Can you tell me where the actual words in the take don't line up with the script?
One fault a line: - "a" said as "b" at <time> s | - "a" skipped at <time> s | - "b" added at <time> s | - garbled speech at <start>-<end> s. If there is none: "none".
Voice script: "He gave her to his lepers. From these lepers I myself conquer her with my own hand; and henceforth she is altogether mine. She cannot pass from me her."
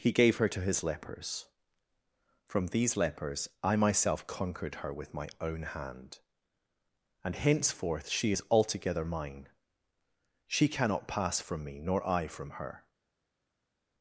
- "conquer" said as "conquered" at 4.2 s
- "nor I from" added at 11.8 s